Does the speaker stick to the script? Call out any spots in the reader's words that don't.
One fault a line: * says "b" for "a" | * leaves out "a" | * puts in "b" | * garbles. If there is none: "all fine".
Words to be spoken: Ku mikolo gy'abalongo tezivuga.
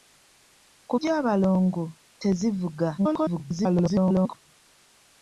* leaves out "mikolo"
* garbles